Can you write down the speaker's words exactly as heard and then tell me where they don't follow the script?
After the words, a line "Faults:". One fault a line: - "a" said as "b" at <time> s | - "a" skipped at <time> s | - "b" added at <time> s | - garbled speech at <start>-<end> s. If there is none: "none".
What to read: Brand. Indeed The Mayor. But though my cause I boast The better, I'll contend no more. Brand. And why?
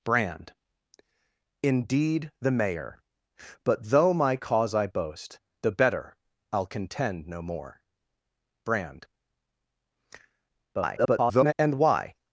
Brand. Indeed The Mayor. But though my cause I boast The better, I'll contend no more. Brand. [garbled] And why?
Faults:
- garbled speech at 10.7-11.5 s